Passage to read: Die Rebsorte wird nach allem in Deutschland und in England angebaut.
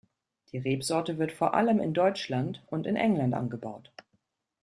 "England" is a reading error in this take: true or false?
false